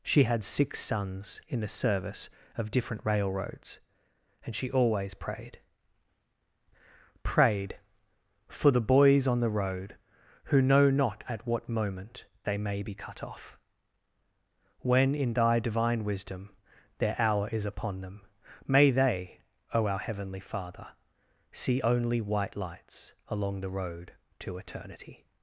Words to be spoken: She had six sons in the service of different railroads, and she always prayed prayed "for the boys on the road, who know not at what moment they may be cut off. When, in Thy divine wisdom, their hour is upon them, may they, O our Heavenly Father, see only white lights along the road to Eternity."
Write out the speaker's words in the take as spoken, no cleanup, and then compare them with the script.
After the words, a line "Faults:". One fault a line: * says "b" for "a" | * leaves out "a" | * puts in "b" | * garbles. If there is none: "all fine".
She had six sons in the service of different railroads, and she always prayed prayed "for the boys on the road, who know not at what moment they may be cut off. When, in Thy divine wisdom, their hour is upon them, may they, O our Heavenly Father, see only white lights along the road to Eternity."
Faults:
all fine